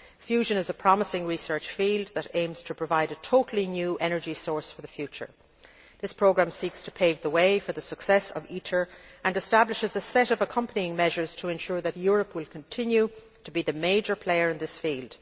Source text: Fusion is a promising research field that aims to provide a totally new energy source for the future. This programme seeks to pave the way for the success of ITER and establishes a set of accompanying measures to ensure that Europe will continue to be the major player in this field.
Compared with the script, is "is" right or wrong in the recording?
right